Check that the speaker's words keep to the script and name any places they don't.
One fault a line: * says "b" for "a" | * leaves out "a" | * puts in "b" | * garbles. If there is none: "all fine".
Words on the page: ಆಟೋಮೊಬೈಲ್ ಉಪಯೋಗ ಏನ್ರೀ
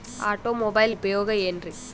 all fine